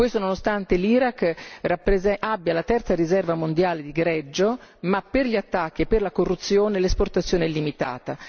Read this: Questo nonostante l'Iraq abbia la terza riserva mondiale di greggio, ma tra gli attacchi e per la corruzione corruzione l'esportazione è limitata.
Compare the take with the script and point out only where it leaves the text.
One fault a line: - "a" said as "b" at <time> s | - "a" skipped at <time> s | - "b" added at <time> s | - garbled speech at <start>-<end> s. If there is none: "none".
- "tra" said as "per" at 5.0 s
- "corruzione" skipped at 6.8 s